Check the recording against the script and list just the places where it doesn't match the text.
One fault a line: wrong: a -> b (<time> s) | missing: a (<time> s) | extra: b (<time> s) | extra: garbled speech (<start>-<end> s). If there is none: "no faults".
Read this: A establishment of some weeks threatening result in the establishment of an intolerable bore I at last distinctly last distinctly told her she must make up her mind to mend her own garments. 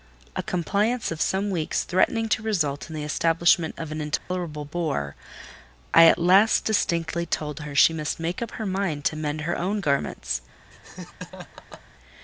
wrong: establishment -> compliance (0.4 s)
extra: to (2.3 s)
missing: last distinctly (7.3 s)